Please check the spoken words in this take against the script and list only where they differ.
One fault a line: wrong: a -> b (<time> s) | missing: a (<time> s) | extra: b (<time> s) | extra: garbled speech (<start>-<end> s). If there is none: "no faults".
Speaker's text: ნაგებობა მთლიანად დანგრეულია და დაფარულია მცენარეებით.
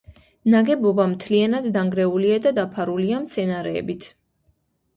no faults